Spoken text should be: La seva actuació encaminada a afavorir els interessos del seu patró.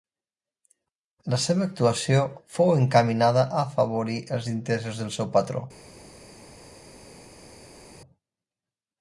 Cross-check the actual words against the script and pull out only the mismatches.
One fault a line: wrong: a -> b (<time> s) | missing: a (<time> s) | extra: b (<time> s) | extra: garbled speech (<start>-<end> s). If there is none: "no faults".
extra: fou (2.5 s)